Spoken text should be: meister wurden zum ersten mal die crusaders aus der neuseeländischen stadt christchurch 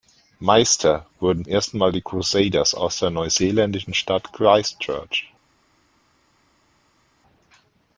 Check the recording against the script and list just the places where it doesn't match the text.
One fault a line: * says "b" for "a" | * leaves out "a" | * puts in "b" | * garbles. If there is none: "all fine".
* leaves out "zum"